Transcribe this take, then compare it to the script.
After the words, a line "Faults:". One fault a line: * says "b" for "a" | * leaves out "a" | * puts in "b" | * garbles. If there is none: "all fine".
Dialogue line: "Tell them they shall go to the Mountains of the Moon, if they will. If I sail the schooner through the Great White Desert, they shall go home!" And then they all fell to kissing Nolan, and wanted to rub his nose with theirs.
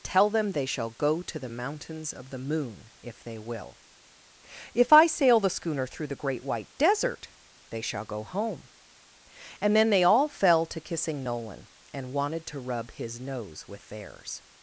"Tell them they shall go to the Mountains of the Moon, if they will. If I sail the schooner through the Great White Desert, they shall go home!" And then they all fell to kissing Nolan, and wanted to rub his nose with theirs.
Faults:
all fine